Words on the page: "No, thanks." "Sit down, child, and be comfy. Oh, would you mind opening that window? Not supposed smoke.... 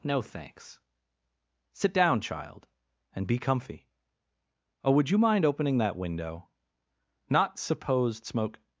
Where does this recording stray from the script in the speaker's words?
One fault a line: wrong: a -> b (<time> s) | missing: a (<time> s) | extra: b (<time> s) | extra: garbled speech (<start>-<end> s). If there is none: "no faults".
no faults